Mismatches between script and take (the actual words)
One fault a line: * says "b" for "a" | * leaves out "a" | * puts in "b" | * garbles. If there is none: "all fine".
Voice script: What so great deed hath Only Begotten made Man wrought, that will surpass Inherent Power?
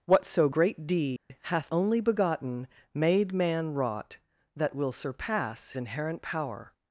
all fine